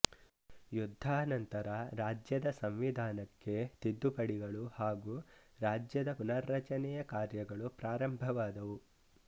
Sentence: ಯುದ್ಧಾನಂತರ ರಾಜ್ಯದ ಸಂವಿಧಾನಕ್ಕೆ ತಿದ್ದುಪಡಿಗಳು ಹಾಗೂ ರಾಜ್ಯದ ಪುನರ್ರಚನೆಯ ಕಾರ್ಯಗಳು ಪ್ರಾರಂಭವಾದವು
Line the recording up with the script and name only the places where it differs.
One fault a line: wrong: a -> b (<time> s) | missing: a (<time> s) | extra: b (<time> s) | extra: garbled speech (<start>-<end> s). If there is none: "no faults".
no faults